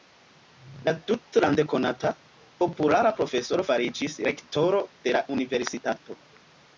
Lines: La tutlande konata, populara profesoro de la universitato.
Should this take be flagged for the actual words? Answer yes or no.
yes